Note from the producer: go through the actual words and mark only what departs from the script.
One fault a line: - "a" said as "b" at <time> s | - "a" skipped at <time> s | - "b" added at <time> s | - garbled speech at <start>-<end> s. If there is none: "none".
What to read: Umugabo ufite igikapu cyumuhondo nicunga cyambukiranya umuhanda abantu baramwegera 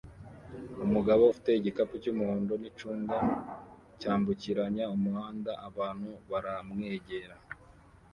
none